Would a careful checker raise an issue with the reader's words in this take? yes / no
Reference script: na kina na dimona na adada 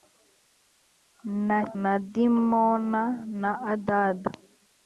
yes